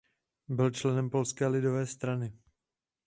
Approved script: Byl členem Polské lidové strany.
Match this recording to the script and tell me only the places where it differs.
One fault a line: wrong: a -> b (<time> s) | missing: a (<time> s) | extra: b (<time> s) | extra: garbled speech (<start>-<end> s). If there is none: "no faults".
no faults